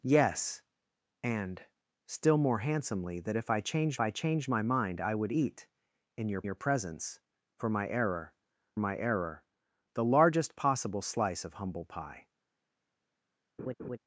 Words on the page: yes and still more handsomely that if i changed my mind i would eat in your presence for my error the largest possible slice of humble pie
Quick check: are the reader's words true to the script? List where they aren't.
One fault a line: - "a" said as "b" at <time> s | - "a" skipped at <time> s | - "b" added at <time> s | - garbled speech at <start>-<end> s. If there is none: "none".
- "i changed" added at 4.0 s
- "your" added at 6.4 s
- "my error" added at 8.8 s